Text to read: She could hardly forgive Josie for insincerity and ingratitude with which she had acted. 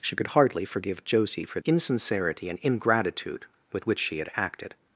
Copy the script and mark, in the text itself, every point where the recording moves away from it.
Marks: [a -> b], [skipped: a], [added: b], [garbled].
She could hardly forgive Josie for insincerity and ingratitude with which she had acted.